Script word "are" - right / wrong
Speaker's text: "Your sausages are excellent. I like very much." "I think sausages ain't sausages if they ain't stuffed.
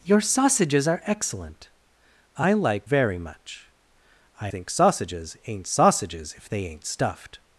right